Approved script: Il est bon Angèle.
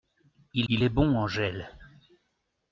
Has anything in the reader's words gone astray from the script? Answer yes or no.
yes